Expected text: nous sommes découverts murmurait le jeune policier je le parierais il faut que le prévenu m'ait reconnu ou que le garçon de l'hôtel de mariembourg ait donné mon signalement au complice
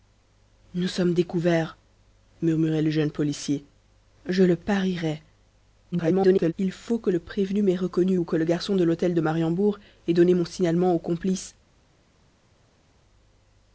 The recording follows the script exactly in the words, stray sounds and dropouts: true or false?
false